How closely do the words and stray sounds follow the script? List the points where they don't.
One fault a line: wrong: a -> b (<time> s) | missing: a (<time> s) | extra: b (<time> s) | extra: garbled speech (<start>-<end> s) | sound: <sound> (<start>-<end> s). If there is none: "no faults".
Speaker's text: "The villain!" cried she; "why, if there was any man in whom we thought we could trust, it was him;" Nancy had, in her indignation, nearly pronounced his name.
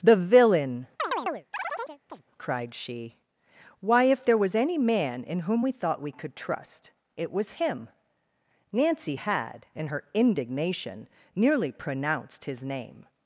sound: chirp (1.0-2.2 s)